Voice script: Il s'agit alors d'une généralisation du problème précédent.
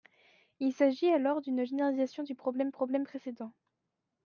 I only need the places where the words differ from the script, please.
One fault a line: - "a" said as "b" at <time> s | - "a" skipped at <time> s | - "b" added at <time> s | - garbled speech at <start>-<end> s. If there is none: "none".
- "problème" added at 2.7 s